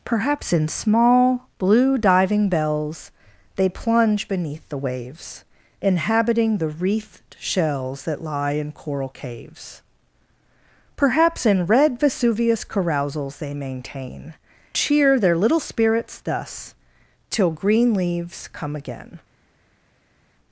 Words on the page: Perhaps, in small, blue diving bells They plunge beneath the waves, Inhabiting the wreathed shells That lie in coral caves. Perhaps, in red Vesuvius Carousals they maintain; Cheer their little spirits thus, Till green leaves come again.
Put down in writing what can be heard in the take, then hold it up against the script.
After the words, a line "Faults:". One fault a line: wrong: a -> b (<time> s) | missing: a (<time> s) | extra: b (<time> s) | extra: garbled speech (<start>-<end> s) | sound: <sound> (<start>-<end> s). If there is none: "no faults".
Perhaps, in small, blue diving bells They plunge beneath the waves, Inhabiting the wreathed shells That lie in coral caves. Perhaps, in red Vesuvius Carousals they maintain; Cheer their little spirits thus, Till green leaves come again.
Faults:
no faults